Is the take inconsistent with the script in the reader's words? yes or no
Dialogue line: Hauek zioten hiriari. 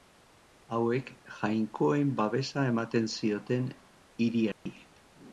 yes